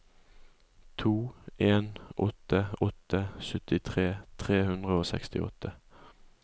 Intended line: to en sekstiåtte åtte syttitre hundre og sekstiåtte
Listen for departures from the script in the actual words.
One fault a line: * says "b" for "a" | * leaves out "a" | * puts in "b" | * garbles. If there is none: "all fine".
* says "åtte" for "sekstiåtte"
* puts in "tre"